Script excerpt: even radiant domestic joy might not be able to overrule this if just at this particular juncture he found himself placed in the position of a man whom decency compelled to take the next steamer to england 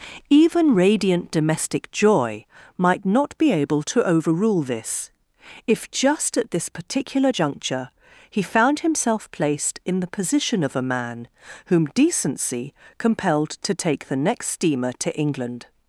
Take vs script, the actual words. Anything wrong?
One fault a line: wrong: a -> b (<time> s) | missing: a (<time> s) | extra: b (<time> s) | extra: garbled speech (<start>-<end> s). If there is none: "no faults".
no faults